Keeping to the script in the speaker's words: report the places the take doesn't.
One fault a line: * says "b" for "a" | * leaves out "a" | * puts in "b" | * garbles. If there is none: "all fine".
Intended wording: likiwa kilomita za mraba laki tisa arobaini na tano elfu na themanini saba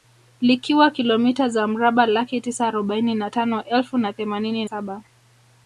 all fine